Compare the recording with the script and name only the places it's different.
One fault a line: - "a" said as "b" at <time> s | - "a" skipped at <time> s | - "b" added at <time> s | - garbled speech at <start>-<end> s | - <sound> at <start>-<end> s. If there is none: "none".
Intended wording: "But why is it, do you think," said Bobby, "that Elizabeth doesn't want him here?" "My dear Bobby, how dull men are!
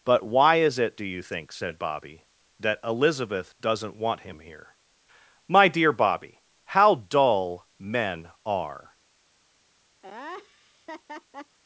- laugh at 10.0-11.6 s